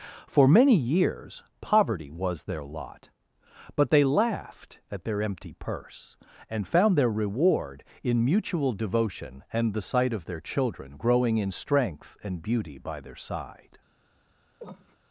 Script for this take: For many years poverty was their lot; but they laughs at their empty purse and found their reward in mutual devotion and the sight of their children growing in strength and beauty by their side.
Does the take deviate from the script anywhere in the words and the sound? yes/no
yes